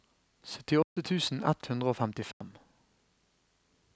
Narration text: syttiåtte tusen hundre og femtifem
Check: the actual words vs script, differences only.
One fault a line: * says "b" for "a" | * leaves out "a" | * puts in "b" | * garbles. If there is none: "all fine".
* puts in "ett"